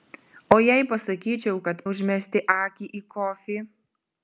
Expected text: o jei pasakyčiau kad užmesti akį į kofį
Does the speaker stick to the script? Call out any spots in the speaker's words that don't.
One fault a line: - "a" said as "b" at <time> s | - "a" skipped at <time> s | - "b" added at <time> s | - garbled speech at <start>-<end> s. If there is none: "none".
none